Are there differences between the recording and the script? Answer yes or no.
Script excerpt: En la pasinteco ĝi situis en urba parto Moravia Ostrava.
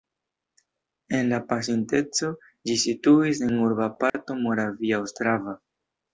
no